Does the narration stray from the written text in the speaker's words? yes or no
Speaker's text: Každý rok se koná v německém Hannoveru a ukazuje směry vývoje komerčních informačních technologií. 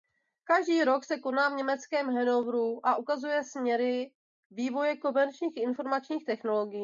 no